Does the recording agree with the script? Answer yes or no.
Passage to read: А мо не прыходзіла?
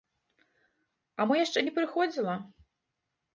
no